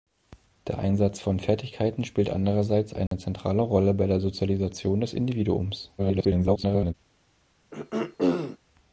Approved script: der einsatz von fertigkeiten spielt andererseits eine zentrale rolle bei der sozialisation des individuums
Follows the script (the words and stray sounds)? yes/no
no